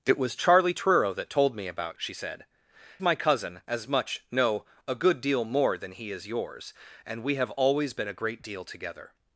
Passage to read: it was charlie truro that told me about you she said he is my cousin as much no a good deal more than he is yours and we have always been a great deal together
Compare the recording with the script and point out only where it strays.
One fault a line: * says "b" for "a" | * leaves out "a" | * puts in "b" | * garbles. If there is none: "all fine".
* leaves out "you"
* leaves out "he is"